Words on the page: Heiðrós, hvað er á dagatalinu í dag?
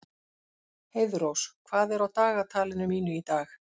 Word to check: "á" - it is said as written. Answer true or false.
true